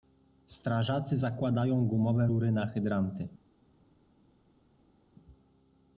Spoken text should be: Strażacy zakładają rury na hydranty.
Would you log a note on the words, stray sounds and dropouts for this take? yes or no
yes